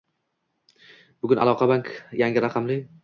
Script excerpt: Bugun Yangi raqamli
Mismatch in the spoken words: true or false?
true